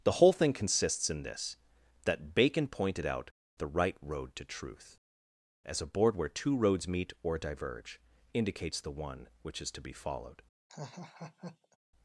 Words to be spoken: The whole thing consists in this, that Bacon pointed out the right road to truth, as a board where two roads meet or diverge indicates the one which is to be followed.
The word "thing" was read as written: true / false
true